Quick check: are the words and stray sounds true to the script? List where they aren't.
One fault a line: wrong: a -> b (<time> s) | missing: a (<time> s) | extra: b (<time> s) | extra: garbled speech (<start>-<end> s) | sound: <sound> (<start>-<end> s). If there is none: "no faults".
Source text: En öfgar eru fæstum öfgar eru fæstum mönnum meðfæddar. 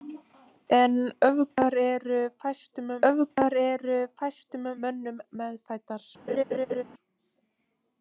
sound: laugh (6.3-6.8 s)